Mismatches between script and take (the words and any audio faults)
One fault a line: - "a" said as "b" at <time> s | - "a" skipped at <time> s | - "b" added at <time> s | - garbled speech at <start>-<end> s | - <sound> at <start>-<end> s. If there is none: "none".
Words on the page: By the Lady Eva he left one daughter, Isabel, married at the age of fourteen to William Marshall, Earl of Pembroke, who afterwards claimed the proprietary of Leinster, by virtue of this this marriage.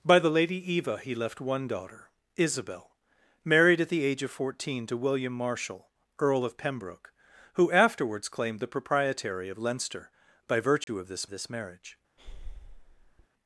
- dropout at 10.8-10.9 s
- breath at 12.2-13.3 s